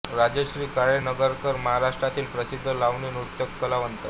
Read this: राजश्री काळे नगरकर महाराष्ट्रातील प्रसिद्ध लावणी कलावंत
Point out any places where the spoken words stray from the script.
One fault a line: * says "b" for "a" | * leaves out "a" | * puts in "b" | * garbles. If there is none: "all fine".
* puts in "नृत्य"